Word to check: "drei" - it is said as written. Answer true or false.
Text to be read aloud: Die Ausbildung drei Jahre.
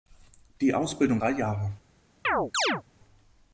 true